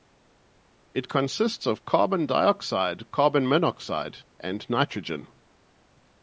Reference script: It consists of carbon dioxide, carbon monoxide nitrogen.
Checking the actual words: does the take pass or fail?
fail